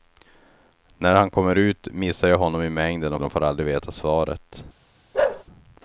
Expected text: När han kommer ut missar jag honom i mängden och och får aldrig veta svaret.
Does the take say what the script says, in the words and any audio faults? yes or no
no